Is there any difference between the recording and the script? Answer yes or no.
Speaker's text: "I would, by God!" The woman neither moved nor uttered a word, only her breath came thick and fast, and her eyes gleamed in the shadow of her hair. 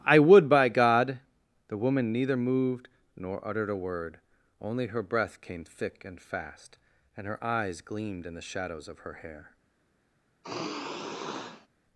yes